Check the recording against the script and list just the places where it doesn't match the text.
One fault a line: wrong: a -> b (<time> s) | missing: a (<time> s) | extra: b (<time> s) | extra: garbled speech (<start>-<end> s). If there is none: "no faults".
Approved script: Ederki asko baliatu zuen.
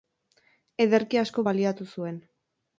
no faults